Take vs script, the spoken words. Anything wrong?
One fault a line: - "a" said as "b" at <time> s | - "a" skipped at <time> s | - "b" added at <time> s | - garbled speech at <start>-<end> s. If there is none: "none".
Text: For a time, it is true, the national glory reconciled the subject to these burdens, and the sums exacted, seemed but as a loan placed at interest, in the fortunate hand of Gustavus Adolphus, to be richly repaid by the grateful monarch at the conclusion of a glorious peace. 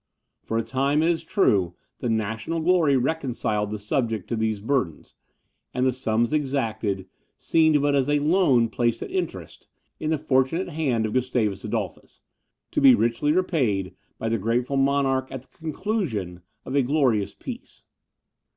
none